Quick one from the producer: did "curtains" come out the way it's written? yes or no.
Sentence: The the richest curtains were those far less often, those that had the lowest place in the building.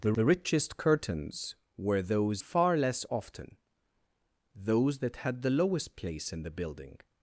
yes